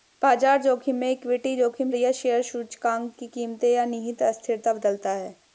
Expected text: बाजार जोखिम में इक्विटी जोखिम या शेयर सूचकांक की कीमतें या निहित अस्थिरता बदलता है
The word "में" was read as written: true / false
true